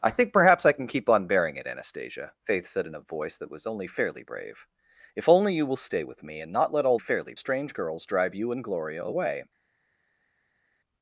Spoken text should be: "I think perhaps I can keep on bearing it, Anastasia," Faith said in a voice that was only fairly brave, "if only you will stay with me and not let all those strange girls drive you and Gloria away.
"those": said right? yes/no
no